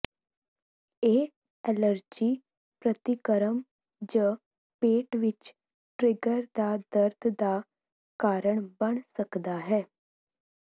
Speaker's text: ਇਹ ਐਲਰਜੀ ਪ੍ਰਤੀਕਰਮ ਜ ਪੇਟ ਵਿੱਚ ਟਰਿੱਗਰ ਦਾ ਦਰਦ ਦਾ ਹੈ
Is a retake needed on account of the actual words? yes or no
yes